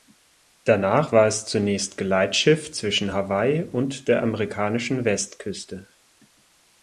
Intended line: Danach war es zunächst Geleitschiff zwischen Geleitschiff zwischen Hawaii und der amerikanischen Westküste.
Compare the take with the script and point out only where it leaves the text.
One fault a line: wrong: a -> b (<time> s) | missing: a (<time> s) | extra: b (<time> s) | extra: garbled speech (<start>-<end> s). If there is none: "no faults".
missing: Geleitschiff zwischen (3.1 s)